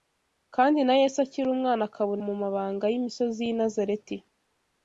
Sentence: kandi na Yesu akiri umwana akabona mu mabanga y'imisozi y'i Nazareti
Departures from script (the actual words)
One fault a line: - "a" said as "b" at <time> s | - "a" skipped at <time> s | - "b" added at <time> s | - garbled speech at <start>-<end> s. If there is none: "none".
none